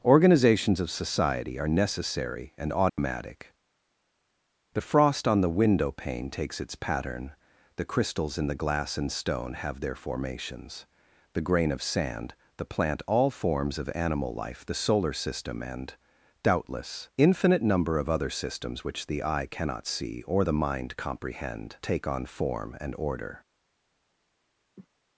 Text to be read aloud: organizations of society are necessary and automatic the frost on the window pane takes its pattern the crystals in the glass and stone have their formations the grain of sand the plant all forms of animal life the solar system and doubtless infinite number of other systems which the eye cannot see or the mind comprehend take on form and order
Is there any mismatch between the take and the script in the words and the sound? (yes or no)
yes